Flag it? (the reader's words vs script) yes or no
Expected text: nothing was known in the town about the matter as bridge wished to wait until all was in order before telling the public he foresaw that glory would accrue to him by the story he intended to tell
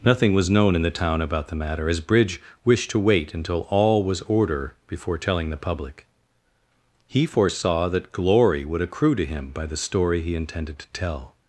yes